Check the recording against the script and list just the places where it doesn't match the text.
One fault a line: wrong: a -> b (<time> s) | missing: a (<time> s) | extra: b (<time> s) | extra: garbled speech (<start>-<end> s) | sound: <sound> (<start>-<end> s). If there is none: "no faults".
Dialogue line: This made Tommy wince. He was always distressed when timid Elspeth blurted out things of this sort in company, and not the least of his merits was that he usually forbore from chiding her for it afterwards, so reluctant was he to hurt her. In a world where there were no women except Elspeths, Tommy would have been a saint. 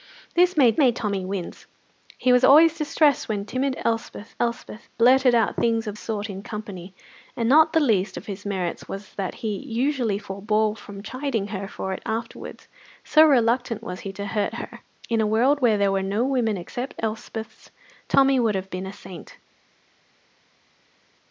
extra: made (0.8 s)
extra: Elspeth (4.4 s)
missing: this (6.0 s)